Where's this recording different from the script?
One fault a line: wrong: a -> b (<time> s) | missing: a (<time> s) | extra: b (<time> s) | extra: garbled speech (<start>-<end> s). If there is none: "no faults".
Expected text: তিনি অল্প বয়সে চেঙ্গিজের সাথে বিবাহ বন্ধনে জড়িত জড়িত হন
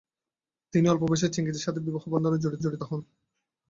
no faults